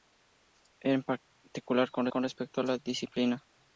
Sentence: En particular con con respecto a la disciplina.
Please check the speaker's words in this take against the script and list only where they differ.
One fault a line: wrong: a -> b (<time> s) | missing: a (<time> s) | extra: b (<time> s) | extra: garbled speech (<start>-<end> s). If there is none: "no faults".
no faults